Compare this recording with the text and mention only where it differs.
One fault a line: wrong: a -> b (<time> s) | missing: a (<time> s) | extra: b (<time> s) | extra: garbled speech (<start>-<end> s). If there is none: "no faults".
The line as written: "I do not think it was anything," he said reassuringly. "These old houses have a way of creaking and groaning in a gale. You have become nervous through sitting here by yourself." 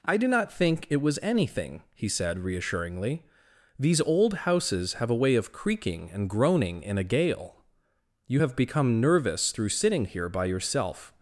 no faults